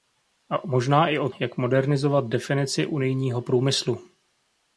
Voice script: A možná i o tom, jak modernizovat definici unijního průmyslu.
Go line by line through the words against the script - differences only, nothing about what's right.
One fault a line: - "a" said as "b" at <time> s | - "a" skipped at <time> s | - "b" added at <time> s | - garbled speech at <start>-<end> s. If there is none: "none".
- "tom" skipped at 1.3 s